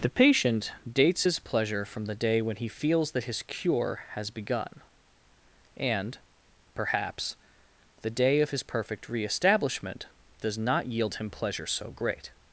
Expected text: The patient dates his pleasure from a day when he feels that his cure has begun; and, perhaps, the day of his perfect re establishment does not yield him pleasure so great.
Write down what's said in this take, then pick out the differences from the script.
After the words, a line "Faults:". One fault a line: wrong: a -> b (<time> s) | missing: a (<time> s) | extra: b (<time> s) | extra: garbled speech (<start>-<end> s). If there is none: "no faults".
The patient dates his pleasure from the day when he feels that his cure has begun; and, perhaps, the day of his perfect re establishment does not yield him pleasure so great.
Faults:
wrong: a -> the (2.0 s)